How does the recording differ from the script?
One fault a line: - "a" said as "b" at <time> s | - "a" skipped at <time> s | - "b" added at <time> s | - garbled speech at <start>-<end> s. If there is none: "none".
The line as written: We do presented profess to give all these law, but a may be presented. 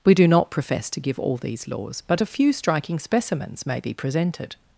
- "presented" said as "not" at 0.3 s
- "law" said as "laws" at 1.7 s
- "few striking specimens" added at 2.2 s